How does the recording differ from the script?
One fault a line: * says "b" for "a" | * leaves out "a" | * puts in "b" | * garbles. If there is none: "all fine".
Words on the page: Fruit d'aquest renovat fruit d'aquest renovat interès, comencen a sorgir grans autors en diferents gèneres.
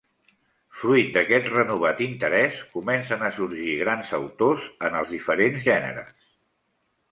* leaves out "fruit d'aquest renovat"
* puts in "els"